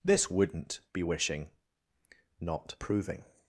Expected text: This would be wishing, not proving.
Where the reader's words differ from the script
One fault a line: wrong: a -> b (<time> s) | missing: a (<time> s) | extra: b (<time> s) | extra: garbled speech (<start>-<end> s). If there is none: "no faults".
wrong: would -> wouldn't (0.3 s)